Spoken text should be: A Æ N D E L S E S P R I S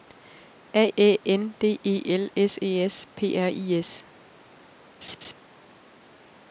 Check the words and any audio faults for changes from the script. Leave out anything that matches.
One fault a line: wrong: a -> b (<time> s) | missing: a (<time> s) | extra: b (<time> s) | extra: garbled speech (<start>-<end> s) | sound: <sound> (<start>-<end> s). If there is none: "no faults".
sound: laugh (5.0-5.3 s)